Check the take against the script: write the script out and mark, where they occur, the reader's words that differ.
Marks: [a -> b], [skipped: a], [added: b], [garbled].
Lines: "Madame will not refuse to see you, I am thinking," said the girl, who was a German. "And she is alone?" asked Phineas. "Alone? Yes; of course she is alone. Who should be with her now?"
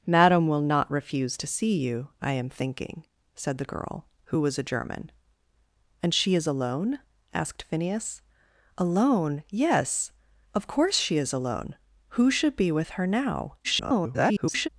"Madame will not refuse to see you, I am thinking," said the girl, who was a German. "And she is alone?" asked Phineas. "Alone? Yes; of course she is alone. Who should be with her now?" [garbled]